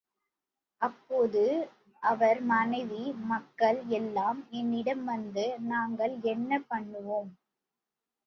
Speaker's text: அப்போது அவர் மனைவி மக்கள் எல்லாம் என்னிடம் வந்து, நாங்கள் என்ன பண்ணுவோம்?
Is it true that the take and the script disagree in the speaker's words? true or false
false